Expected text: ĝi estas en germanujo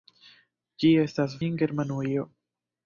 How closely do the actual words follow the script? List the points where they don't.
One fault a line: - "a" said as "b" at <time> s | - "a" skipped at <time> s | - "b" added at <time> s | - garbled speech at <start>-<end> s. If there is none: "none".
none